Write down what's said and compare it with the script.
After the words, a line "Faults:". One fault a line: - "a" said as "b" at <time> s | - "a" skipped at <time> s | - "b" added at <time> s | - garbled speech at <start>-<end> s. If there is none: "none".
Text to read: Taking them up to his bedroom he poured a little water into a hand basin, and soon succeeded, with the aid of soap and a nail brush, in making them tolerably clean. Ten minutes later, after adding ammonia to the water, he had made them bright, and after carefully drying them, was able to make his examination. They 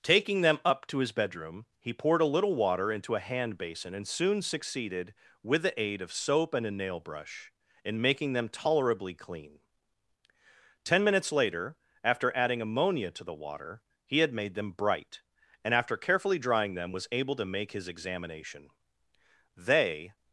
Taking them up to his bedroom he poured a little water into a hand basin, and soon succeeded, with the aid of soap and a nail brush, in making them tolerably clean. Ten minutes later, after adding ammonia to the water, he had made them bright, and after carefully drying them, was able to make his examination. They
Faults:
none